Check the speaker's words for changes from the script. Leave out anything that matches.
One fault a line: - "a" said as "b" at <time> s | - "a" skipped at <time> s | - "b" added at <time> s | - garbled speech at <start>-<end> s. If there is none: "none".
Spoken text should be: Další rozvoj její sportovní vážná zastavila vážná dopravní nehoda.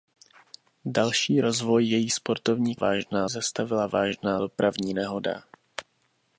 none